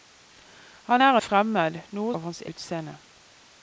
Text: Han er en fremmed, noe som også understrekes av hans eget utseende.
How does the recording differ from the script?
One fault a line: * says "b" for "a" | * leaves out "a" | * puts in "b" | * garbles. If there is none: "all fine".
* leaves out "en"
* leaves out "som også understrekes"
* leaves out "eget"